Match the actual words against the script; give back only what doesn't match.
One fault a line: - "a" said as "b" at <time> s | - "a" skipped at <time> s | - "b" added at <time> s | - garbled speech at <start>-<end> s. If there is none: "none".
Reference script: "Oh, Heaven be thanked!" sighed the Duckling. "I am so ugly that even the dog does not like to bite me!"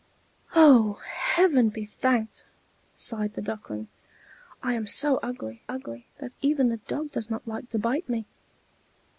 - "ugly" added at 5.7 s